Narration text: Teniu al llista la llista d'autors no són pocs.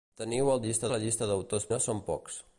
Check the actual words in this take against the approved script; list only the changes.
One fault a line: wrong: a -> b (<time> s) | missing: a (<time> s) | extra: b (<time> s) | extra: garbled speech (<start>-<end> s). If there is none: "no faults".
no faults